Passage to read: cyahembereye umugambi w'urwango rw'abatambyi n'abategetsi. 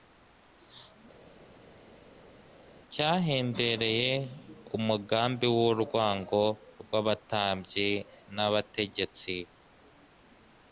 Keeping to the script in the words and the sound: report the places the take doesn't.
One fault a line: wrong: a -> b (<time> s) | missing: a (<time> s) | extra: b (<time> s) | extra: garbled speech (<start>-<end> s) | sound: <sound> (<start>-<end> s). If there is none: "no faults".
no faults